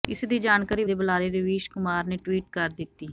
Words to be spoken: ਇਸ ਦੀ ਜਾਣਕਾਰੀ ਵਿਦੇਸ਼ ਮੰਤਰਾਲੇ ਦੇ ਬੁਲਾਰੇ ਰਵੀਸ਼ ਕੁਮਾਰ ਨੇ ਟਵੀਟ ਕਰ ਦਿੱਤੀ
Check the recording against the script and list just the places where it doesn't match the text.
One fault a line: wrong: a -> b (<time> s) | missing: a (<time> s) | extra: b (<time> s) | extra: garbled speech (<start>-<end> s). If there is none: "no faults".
missing: ਵਿਦੇਸ਼ ਮੰਤਰਾਲੇ (0.8 s)